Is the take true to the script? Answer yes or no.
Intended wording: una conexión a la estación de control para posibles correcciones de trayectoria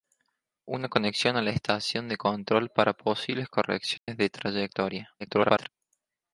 no